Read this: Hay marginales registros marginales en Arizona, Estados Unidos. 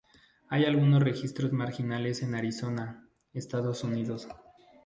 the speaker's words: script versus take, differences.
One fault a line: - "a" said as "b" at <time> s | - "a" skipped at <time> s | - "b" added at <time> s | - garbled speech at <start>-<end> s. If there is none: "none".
- "marginales" said as "algunos" at 0.7 s